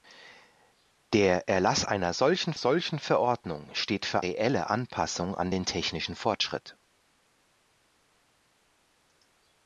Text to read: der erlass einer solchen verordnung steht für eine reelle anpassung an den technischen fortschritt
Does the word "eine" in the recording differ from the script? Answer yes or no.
yes